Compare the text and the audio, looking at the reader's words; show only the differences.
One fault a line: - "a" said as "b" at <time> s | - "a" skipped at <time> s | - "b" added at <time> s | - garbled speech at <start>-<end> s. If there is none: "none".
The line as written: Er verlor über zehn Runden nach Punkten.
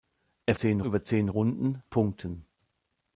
- "verlor" said as "zehn" at 0.5 s
- "nach" skipped at 1.8 s